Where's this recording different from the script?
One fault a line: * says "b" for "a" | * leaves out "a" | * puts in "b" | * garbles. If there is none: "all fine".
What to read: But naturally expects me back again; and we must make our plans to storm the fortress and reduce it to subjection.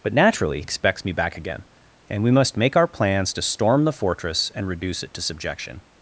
all fine